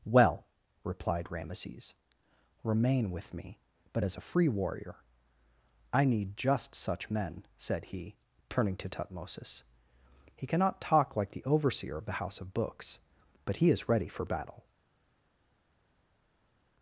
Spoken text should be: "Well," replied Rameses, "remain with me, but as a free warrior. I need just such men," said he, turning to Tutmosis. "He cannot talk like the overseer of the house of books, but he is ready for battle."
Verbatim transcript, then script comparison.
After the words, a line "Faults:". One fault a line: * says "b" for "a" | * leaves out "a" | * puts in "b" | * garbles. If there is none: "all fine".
"Well," replied Rameses, "remain with me, but as a free warrior. I need just such men," said he, turning to Tutmosis. "He cannot talk like the overseer of the house of books, but he is ready for battle."
Faults:
all fine